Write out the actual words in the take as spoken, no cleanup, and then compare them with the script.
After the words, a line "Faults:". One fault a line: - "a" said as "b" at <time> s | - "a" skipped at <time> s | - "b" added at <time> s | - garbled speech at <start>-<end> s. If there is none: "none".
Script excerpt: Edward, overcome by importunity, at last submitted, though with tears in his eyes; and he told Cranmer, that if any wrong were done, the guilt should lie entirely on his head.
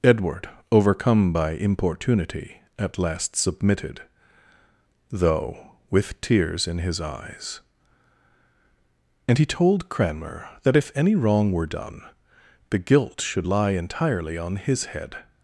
Edward, overcome by importunity, at last submitted, though with tears in his eyes; and he told Cranmer, that if any wrong were done, the guilt should lie entirely on his head.
Faults:
none